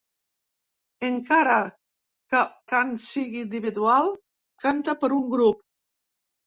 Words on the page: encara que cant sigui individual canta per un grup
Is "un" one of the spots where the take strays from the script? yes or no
no